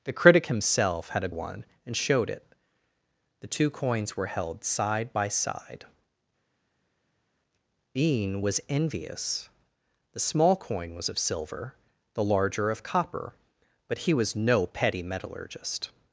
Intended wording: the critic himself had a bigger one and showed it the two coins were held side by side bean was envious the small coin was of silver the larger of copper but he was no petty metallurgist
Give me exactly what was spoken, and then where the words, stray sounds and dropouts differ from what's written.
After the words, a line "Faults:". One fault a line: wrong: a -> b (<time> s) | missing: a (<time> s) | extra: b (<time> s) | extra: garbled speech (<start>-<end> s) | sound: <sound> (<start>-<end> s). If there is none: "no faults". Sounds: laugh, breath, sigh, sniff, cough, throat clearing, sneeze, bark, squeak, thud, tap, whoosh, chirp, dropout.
the critic himself had a one and showed it the two coins were held side by side bean was envious the small coin was of silver the larger of copper but he was no petty metallurgist
Faults:
missing: bigger (1.3 s)